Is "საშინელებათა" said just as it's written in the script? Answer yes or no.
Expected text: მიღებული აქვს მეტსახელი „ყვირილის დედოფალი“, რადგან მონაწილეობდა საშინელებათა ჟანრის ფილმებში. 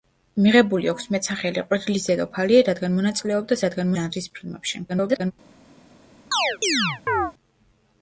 no